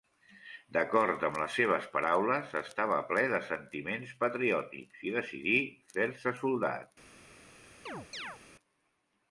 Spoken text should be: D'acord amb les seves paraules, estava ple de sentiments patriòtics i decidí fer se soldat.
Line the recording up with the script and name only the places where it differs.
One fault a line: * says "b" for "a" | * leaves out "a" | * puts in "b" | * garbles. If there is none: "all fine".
all fine